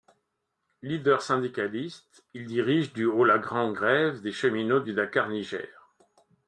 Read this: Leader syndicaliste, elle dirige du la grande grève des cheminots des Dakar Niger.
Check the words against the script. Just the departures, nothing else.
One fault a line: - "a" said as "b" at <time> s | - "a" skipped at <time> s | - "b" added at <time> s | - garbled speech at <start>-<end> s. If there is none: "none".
- "elle" said as "il" at 2.3 s
- "au" added at 3.0 s
- "des" said as "du" at 4.8 s